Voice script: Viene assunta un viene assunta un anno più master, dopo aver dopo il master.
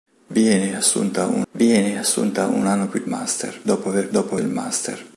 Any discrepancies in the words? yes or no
no